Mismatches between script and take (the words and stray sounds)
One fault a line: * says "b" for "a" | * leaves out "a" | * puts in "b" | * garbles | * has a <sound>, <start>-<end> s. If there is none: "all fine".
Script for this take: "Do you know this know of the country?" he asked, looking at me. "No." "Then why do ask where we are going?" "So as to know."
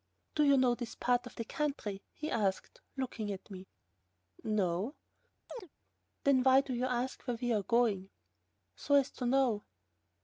* says "part" for "know"
* has a chirp, 5.5-5.7 s
* puts in "you"